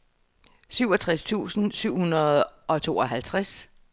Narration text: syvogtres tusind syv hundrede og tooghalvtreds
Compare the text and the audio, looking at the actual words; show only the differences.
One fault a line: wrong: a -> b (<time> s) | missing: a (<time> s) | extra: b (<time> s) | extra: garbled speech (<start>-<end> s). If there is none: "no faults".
no faults